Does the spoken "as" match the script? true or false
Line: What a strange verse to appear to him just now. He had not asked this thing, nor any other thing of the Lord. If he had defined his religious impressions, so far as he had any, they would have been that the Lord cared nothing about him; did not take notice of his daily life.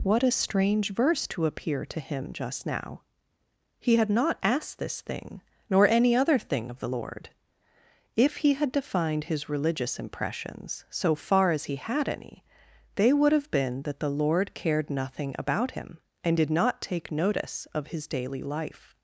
true